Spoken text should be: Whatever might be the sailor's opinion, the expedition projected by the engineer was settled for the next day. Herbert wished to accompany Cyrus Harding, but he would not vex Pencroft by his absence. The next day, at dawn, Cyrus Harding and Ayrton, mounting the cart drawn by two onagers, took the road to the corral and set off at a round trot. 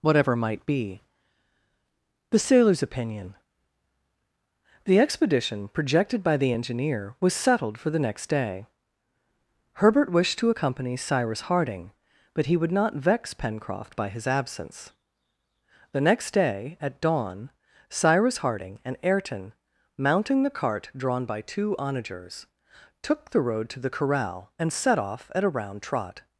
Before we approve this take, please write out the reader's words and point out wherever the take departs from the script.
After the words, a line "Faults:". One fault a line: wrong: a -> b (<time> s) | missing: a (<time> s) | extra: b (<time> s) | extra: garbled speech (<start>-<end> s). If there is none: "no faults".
Whatever might be the sailor's opinion, the expedition projected by the engineer was settled for the next day. Herbert wished to accompany Cyrus Harding, but he would not vex Pencroft by his absence. The next day, at dawn, Cyrus Harding and Ayrton, mounting the cart drawn by two onagers, took the road to the corral and set off at a round trot.
Faults:
no faults